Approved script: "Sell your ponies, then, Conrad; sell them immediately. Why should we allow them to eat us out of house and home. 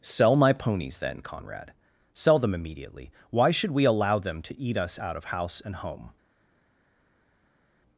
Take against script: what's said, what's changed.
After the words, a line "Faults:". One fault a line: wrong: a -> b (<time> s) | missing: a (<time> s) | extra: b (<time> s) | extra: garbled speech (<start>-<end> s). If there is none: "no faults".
"Sell my ponies, then, Conrad; sell them immediately. Why should we allow them to eat us out of house and home.
Faults:
wrong: your -> my (0.3 s)